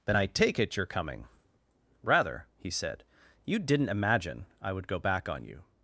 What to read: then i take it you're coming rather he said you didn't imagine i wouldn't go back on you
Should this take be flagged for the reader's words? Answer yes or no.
yes